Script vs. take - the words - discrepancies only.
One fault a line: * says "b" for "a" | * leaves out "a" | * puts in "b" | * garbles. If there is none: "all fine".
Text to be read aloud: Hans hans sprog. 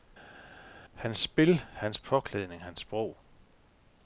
* puts in "spil hans påklædning"